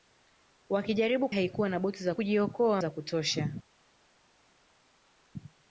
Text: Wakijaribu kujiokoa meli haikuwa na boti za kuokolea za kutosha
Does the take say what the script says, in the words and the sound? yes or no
no